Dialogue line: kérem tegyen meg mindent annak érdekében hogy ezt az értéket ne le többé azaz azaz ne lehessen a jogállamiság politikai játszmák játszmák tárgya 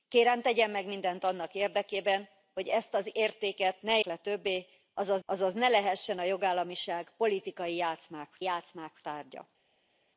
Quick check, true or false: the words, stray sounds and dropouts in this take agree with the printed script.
true